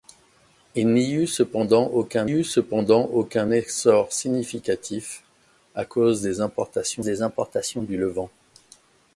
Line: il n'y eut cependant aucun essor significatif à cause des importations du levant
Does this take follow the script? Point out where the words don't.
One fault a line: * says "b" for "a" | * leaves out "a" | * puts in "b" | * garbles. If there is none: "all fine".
* puts in "eut cependant aucun"
* puts in "des importations"